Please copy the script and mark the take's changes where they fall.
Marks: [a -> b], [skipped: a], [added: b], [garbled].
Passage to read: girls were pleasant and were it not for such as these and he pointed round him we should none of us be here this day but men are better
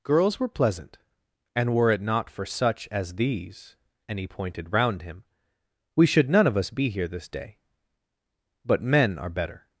girls were pleasant and were it not for such as these and he pointed round him we should none of us be here this day but men are better